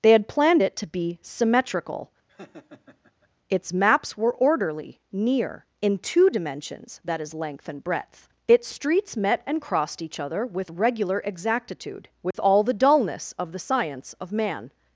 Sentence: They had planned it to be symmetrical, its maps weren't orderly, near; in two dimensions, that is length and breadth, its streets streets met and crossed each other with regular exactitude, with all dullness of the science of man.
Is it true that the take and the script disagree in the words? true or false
true